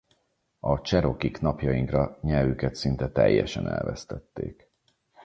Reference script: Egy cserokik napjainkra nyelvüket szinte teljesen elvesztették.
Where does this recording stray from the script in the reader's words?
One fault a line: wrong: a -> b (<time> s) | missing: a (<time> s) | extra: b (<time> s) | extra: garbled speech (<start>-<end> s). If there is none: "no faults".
wrong: Egy -> A (0.6 s)